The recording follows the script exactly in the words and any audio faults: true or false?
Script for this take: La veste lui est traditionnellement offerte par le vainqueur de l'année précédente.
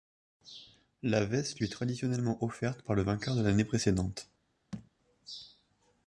false